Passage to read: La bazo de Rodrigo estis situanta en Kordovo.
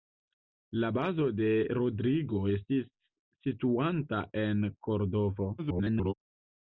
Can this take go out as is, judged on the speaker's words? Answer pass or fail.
fail